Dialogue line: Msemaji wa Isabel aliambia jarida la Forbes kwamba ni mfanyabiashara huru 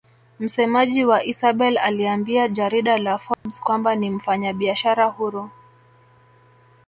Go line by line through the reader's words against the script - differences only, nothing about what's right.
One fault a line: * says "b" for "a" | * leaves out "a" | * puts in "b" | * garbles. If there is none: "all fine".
all fine